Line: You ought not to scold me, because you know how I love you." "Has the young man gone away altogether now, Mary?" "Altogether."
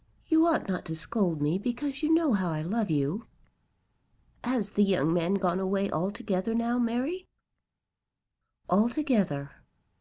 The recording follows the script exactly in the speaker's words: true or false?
true